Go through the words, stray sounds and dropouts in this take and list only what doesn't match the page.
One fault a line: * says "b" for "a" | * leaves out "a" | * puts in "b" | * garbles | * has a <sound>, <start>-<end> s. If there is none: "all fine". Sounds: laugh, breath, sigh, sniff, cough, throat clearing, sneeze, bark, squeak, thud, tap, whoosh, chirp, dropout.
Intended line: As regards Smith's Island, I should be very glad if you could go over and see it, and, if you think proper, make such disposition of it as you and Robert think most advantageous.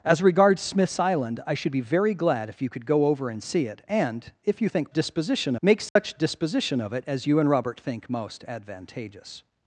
* says "disposition" for "proper"
* has a dropout, 5.9-6.0 s